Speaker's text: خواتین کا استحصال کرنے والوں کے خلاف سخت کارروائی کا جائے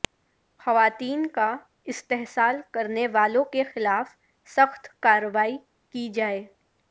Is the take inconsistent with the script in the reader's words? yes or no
yes